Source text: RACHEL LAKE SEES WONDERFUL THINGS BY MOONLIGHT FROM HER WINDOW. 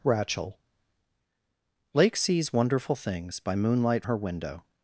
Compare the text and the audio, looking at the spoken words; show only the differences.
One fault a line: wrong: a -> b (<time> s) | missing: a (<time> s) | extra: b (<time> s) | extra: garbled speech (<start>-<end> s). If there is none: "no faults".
missing: FROM (4.0 s)